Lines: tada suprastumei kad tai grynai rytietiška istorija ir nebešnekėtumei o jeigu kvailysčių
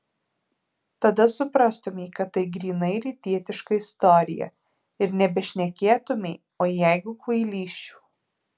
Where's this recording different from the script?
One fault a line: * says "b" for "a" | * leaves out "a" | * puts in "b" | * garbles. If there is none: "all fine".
all fine